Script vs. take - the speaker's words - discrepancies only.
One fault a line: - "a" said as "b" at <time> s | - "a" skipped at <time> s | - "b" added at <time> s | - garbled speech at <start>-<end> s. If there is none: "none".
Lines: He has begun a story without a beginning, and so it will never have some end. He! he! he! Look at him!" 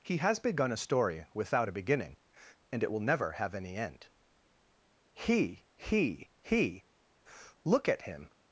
- "so" skipped at 2.8 s
- "some" said as "any" at 3.5 s